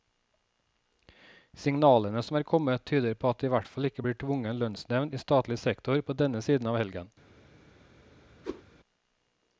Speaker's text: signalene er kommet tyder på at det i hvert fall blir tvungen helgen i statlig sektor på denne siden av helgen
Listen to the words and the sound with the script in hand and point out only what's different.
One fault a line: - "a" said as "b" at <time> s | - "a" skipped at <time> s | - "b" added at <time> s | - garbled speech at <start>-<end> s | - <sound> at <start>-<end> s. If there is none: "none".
- "som" added at 2.2 s
- "ikke" added at 3.9 s
- "helgen" said as "lønnsnevnd" at 4.6 s
- whoosh at 8.4-8.6 s